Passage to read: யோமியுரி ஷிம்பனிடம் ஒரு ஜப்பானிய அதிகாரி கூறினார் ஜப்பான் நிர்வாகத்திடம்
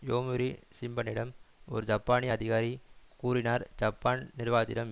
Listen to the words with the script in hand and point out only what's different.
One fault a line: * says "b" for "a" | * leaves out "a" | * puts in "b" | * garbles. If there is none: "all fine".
all fine